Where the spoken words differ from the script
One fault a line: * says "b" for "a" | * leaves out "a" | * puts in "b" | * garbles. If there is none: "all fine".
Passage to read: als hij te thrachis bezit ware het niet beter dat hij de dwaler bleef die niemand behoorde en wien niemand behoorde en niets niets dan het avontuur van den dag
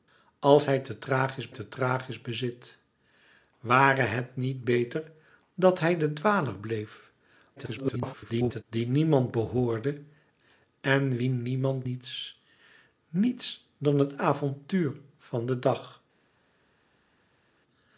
* puts in "te thrachis"
* garbles
* leaves out "behoorde en"